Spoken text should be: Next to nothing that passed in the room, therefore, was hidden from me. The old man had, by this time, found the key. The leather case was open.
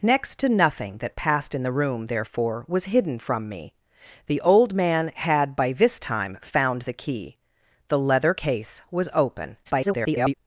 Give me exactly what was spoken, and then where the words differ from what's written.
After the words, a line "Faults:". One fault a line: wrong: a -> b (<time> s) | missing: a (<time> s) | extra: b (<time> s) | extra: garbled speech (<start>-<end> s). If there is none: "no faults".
Next to nothing that passed in the room, therefore, was hidden from me. The old man had, by this time, found the key. The leather case was open. [garbled]
Faults:
extra: garbled speech (9.6-10.3 s)